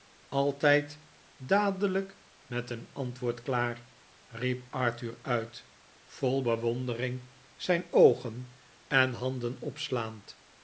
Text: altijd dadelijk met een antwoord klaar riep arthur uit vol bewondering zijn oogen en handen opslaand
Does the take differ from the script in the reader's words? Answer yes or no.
no